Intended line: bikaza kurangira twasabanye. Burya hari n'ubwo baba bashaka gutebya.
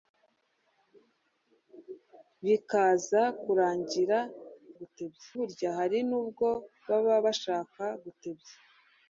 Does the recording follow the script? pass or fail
fail